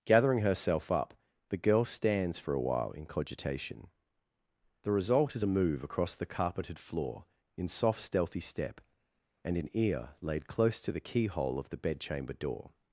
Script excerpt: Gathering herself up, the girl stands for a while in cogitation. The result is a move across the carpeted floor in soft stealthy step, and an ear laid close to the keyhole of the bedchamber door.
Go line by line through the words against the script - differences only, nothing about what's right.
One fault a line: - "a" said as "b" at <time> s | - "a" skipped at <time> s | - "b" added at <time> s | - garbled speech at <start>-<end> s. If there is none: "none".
none